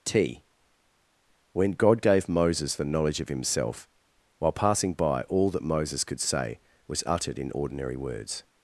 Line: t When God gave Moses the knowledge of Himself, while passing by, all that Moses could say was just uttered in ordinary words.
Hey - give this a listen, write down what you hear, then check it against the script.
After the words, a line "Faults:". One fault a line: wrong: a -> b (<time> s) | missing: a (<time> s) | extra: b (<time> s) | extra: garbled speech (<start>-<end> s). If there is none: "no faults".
t When God gave Moses the knowledge of Himself, while passing by, all that Moses could say was uttered in ordinary words.
Faults:
missing: just (7.0 s)